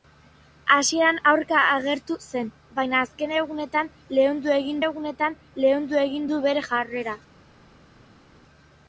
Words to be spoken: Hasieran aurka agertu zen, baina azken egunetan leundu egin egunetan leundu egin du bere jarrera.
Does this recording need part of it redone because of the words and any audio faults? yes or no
no